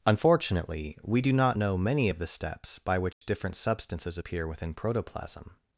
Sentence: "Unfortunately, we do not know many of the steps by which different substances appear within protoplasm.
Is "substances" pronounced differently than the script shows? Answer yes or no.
no